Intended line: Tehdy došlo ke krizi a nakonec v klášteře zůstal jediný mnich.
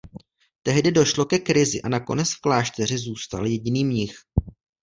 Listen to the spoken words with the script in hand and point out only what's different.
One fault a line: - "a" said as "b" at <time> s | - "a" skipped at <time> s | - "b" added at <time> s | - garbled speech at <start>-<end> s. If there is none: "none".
none